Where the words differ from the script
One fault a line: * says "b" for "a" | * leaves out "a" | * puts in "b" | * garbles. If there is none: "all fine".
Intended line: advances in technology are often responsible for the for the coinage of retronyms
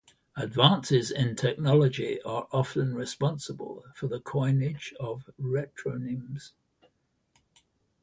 * leaves out "for the"